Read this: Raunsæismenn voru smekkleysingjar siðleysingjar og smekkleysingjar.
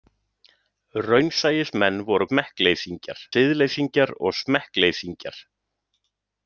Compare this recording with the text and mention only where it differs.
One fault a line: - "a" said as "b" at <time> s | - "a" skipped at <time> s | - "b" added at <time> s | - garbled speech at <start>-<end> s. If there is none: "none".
none